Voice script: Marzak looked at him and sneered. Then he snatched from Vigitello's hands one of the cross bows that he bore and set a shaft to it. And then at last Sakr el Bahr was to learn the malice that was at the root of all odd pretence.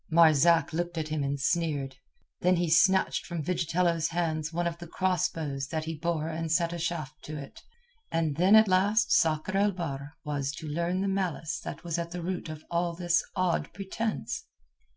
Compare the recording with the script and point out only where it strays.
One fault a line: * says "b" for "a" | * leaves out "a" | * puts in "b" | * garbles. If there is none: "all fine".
* puts in "this"